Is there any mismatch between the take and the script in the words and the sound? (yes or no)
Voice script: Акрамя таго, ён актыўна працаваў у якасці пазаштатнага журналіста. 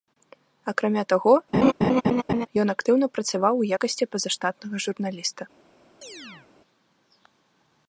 yes